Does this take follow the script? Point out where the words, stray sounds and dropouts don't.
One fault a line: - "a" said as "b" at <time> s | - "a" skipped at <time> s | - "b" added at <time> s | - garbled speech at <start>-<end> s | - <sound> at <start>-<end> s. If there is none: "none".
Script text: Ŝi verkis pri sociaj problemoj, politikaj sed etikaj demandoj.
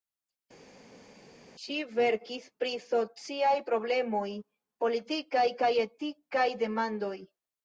- "sed" said as "kaj" at 5.6 s